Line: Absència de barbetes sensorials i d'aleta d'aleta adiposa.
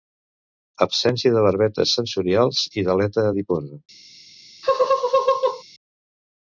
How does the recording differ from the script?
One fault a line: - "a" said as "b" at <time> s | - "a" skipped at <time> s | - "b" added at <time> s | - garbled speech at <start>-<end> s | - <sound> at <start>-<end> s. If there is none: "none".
- "d'aleta" skipped at 3.3 s
- laugh at 4.6-5.6 s